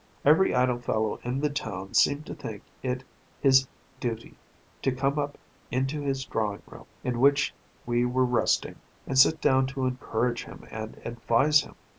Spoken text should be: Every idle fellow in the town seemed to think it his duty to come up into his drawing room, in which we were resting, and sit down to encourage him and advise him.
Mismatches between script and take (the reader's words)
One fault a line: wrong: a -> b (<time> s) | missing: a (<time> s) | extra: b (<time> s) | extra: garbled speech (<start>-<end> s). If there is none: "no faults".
no faults